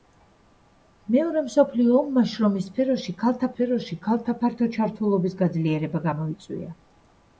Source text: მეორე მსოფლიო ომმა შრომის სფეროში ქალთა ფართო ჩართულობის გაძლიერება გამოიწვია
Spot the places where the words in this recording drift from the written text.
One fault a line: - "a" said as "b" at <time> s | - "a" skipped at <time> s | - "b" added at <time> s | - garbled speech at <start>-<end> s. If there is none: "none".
- "სფეროში ქალთა" added at 3.5 s